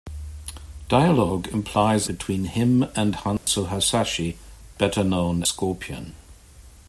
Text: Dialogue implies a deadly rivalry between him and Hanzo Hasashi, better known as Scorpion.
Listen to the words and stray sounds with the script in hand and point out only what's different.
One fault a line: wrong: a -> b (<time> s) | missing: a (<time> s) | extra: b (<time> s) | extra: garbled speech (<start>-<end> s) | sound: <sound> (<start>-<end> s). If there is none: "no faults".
missing: a deadly rivalry (2.1 s)
sound: dropout (3.4-3.5 s)
missing: as (5.4 s)